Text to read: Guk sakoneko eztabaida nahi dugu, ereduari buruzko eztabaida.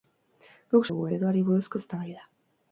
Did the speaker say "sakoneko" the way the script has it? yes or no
no